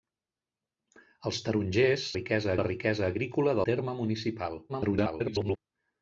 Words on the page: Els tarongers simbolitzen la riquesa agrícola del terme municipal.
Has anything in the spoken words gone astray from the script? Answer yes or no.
yes